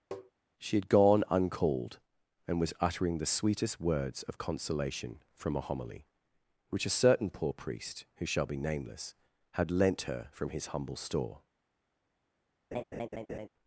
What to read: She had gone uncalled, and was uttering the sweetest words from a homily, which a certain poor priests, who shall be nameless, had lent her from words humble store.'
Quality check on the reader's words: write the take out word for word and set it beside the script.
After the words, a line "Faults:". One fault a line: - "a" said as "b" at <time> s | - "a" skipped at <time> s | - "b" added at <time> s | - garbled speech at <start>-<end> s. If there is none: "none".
She had gone uncalled, and was uttering the sweetest words of consolation from a homily, which a certain poor priest, who shall be nameless, had lent her from his humble store.'
Faults:
- "of consolation" added at 4.2 s
- "priests" said as "priest" at 7.5 s
- "words" said as "his" at 10.5 s